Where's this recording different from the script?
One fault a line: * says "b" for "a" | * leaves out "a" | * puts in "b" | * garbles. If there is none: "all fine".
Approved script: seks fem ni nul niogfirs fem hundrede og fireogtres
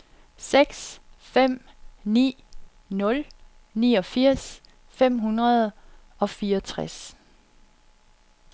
all fine